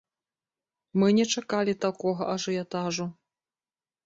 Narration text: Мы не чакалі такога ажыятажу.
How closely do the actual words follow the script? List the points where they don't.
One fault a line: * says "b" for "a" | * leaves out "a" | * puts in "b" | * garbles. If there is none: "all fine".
all fine